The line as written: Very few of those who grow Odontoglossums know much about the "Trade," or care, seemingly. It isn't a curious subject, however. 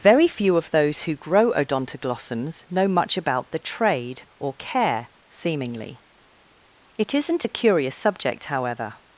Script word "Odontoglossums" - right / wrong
right